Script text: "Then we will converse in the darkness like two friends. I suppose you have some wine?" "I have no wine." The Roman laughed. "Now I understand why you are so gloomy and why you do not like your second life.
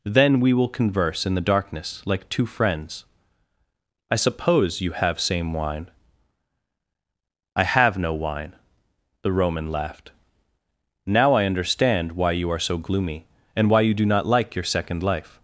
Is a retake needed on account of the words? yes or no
yes